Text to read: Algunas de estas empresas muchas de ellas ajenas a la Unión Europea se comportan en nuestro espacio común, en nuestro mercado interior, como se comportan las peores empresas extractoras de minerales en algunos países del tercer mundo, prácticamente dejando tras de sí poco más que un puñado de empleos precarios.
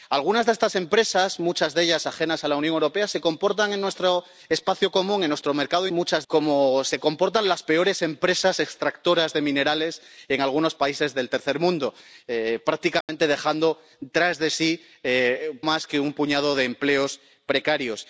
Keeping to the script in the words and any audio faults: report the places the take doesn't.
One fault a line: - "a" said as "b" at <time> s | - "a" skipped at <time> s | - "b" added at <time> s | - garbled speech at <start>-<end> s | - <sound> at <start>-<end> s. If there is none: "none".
- "interior" said as "muchas" at 5.9 s
- dropout at 13.0-13.1 s
- "poco" skipped at 14.8 s